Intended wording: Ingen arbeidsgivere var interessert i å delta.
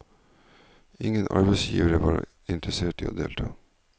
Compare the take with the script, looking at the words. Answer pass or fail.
pass